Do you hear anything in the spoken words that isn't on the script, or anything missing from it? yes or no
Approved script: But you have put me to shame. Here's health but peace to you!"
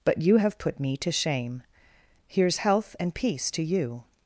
yes